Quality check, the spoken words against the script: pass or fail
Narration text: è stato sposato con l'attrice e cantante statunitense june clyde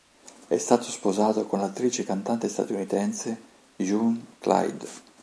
pass